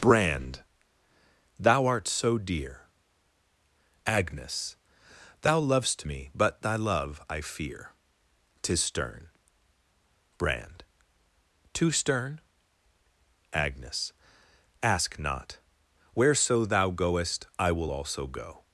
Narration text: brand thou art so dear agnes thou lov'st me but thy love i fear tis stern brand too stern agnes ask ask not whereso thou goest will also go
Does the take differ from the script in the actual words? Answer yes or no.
yes